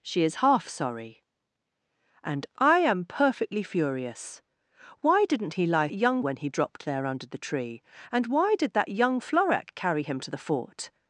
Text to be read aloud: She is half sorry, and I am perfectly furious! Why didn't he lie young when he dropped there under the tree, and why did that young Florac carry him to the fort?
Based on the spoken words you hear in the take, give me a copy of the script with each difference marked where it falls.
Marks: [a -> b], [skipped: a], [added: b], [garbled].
She is half sorry, and I am perfectly furious! Why didn't he lie young when he dropped there under the tree, and why did that young Florac carry him to the fort?